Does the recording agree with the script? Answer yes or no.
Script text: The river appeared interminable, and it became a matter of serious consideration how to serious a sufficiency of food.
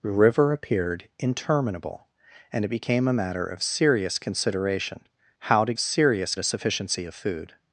yes